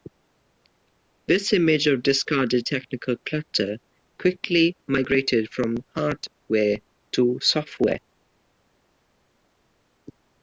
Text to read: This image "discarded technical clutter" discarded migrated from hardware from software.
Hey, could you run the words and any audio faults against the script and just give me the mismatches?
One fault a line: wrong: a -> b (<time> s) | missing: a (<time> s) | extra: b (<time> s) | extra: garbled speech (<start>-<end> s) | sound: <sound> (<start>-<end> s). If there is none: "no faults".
extra: of (1.9 s)
wrong: discarded -> quickly (4.2 s)
wrong: from -> to (7.1 s)